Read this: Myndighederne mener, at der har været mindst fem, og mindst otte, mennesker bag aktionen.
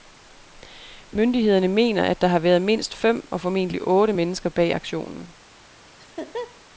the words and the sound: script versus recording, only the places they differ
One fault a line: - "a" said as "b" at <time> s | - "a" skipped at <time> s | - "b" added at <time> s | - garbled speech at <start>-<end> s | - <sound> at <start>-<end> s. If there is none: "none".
- "mindst" said as "formentlig" at 3.4 s
- laugh at 6.0-6.6 s